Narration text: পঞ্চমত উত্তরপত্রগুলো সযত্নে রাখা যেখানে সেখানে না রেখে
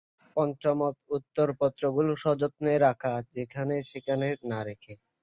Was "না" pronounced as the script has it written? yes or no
yes